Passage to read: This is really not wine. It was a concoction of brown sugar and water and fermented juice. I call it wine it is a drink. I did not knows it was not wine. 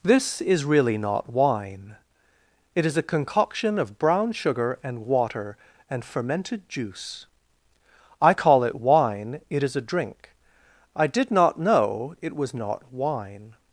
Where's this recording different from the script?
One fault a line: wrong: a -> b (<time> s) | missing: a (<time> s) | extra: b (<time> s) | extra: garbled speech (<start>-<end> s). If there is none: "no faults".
wrong: was -> is (2.9 s)
wrong: knows -> know (11.6 s)